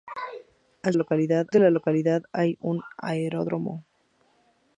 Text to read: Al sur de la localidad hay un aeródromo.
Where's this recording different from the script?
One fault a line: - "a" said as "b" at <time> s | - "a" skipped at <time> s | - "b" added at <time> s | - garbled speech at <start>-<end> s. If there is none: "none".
- "sur" said as "localidad" at 0.9 s